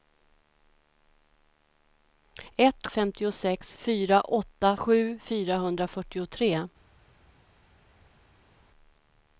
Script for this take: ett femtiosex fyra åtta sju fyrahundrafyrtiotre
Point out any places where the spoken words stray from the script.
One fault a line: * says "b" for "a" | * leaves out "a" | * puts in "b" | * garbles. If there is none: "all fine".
all fine